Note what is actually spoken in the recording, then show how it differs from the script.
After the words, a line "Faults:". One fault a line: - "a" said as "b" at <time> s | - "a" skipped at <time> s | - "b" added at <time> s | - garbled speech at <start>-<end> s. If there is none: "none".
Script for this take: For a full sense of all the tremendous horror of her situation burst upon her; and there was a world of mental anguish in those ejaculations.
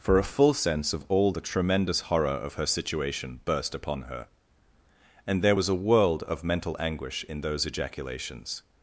For a full sense of all the tremendous horror of her situation burst upon her; and there was a world of mental anguish in those ejaculations.
Faults:
none